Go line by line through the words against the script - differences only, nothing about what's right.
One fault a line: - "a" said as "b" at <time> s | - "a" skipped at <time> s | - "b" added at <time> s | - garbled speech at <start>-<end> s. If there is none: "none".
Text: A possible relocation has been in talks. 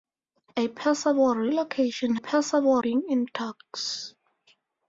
- "has" said as "possible" at 2.1 s